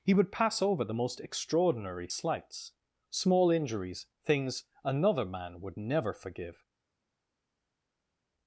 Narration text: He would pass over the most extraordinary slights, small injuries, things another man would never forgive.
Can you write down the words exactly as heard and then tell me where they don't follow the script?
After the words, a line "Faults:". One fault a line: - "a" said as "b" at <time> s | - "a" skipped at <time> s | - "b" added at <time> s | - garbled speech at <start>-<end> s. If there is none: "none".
He would pass over the most extraordinary slights, small injuries, things another man would never forgive.
Faults:
none